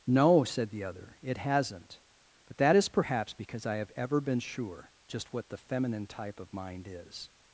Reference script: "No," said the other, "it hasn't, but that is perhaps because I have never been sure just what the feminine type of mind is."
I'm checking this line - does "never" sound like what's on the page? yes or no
no